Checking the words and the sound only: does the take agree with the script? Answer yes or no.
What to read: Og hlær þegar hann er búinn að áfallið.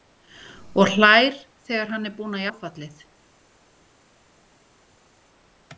yes